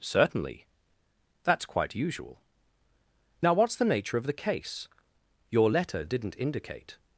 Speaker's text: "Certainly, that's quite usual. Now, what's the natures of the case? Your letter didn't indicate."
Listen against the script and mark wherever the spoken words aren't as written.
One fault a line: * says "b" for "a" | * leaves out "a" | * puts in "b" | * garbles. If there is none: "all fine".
* says "nature" for "natures"